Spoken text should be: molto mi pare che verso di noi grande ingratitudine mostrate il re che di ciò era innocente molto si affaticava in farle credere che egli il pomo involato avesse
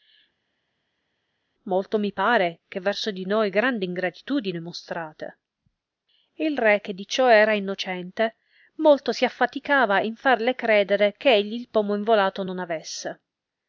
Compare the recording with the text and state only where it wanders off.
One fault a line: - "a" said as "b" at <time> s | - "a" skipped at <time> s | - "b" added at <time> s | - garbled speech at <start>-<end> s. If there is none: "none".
- "non" added at 12.4 s